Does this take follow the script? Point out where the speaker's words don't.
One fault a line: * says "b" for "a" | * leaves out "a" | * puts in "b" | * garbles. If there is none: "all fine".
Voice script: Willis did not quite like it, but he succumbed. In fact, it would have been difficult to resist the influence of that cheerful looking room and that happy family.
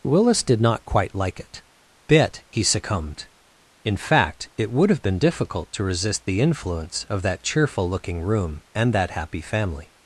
* says "bit" for "but"